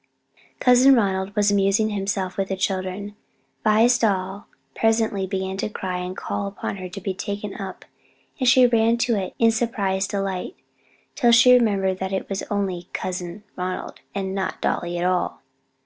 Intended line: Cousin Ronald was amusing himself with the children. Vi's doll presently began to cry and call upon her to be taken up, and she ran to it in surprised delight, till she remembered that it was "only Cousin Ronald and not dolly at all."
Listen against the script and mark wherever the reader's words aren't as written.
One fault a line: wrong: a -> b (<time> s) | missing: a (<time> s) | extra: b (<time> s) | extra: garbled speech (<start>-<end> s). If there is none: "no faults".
no faults